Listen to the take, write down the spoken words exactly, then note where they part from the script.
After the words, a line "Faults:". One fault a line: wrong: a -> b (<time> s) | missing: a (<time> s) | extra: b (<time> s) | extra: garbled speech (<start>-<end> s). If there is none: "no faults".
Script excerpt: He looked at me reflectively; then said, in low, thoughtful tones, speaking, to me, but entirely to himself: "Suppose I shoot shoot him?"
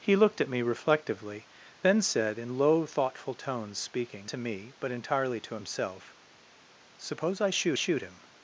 He looked at me reflectively; then said, in low, thoughtful tones, speaking, to me, but entirely to himself: "Suppose I shoot shoot him?"
Faults:
no faults